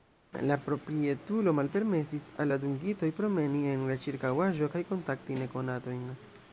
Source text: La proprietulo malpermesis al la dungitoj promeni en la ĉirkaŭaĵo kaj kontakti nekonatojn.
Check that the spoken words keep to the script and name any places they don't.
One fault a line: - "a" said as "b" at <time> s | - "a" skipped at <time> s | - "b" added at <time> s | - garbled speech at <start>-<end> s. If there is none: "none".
none